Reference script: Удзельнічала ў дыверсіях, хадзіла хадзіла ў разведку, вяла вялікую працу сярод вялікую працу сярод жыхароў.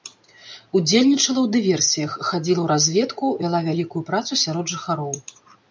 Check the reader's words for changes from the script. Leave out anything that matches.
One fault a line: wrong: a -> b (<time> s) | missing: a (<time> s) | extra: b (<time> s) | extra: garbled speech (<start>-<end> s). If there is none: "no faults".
missing: хадзіла (2.6 s)
missing: вялікую працу сярод (4.7 s)